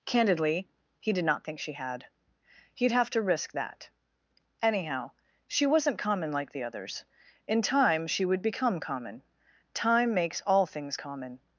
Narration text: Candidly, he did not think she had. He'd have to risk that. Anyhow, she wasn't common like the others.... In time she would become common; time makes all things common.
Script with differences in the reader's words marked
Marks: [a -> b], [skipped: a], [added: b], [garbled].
Candidly, he did not think she had. He'd have to risk that. Anyhow, she wasn't common like the others.... In time she would become common; time makes all things common.